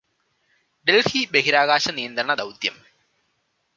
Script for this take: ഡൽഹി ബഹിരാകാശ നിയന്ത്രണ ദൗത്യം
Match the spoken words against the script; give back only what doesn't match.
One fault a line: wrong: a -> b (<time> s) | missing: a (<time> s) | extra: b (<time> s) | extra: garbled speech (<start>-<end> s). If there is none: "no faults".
no faults